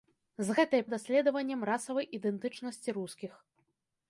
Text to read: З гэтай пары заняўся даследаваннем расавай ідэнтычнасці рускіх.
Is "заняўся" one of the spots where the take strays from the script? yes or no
yes